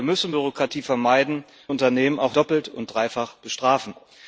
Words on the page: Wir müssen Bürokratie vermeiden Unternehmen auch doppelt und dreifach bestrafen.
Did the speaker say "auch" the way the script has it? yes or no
yes